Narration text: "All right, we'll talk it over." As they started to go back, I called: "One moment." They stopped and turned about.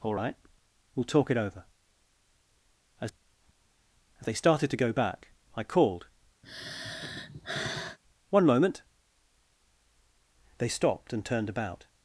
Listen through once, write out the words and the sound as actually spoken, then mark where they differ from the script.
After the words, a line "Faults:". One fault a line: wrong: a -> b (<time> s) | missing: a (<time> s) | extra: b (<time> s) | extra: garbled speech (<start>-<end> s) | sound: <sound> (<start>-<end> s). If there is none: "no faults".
"All right, we'll talk it over." As As they started to go back, I called: "One moment." They stopped and turned about.
Faults:
extra: As (4.2 s)
sound: sigh (6.4-8.0 s)